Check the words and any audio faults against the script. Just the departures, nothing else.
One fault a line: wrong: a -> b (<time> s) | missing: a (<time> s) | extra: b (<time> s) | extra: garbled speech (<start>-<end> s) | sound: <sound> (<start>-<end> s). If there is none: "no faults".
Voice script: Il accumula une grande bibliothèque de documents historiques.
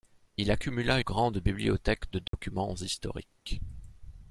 missing: une (1.0 s)
sound: dropout (2.3-2.3 s)